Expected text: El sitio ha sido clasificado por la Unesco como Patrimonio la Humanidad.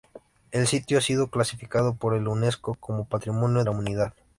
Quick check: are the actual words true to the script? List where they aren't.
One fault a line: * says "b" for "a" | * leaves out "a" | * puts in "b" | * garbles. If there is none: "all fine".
all fine